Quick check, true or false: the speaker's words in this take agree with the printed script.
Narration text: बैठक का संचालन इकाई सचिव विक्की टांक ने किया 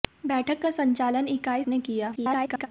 false